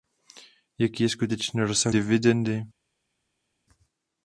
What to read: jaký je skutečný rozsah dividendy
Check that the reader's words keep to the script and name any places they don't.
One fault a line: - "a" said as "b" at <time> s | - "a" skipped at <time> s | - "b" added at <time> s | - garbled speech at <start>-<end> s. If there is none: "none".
none